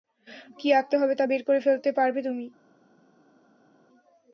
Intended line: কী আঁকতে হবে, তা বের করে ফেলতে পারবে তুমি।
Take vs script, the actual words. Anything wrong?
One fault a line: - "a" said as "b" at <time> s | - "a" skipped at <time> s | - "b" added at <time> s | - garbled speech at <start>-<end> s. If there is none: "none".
none